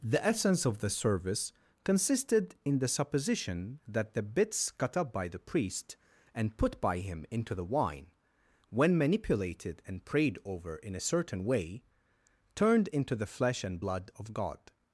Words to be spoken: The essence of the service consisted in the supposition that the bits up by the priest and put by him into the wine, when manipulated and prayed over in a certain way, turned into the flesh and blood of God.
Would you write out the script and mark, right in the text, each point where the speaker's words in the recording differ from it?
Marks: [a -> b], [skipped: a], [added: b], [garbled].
The essence of the service consisted in the supposition that the bits [added: cut] up by the priest and put by him into the wine, when manipulated and prayed over in a certain way, turned into the flesh and blood of God.